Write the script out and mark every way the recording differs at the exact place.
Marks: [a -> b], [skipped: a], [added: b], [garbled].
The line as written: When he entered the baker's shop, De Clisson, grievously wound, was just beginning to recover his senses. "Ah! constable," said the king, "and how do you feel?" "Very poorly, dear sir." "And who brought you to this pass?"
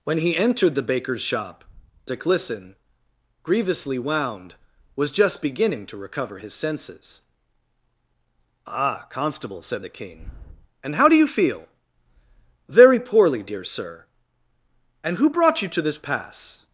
When he entered the baker's shop, De Clisson, grievously wound, was just beginning to recover his senses. "Ah! constable," said the king, "and how do you feel?" "Very poorly, dear sir." "And who brought you to this pass?"